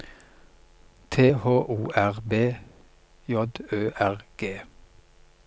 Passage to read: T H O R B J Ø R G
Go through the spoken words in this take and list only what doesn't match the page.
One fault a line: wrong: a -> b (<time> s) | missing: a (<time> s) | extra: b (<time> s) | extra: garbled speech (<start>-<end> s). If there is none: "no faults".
no faults